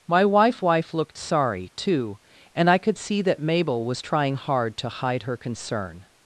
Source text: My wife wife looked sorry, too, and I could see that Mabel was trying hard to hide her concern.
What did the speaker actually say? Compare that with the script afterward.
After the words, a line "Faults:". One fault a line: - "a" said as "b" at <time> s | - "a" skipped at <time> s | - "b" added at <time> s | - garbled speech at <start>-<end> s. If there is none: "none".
My wife wife looked sorry, too, and I could see that Mabel was trying hard to hide her concern.
Faults:
none